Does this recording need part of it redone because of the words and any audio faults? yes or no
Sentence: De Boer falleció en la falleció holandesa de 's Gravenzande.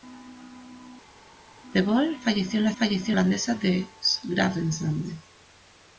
no